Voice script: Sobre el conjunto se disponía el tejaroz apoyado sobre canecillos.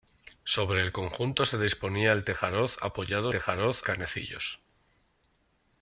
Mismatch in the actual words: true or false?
true